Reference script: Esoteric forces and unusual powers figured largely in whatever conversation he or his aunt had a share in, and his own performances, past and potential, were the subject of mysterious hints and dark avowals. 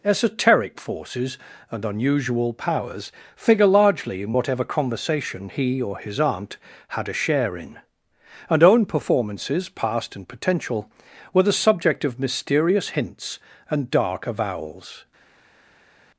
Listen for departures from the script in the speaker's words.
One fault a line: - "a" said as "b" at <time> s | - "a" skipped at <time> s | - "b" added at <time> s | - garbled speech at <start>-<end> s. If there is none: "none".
- "figured" said as "figure" at 3.4 s
- "his" skipped at 8.6 s